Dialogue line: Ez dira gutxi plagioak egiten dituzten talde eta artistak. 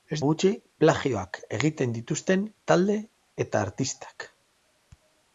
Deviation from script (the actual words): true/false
true